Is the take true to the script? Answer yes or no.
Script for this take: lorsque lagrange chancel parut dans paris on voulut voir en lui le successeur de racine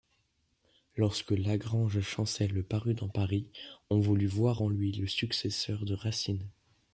yes